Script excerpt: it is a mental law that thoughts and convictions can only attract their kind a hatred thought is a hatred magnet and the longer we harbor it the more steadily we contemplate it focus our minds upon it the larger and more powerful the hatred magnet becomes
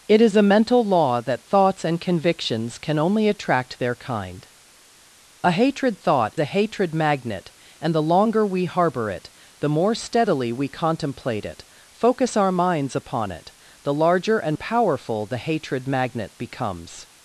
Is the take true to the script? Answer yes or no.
no